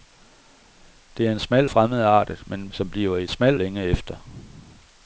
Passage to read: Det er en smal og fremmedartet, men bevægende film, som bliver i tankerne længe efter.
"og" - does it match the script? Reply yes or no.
no